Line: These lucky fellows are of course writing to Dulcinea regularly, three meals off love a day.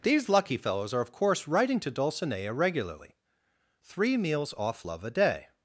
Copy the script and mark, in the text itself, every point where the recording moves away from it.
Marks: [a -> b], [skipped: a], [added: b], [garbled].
These lucky fellows are of course writing to Dulcinea regularly, three meals off love a day.